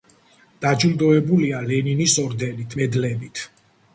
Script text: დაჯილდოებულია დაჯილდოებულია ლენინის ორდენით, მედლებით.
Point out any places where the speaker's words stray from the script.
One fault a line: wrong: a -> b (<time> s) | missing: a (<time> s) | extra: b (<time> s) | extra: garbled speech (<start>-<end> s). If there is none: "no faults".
missing: დაჯილდოებულია (1.6 s)